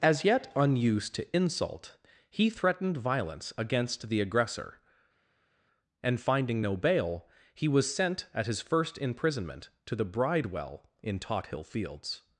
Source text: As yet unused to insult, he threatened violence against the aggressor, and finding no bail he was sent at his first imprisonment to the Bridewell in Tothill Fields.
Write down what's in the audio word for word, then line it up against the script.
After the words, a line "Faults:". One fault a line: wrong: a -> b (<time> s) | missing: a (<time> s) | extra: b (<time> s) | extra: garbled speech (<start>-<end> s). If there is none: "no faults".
As yet unused to insult, he threatened violence against the aggressor, and finding no bail he was sent at his first imprisonment to the Bridewell in Tothill Fields.
Faults:
no faults